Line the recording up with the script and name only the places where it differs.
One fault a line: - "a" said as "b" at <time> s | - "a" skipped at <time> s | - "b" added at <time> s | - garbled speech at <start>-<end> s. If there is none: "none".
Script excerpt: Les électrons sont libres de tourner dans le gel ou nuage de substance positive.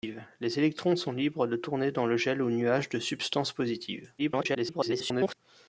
- garbled speech at 4.2-5.3 s